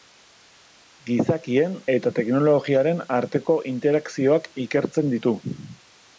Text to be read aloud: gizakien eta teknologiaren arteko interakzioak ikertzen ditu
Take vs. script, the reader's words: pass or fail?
pass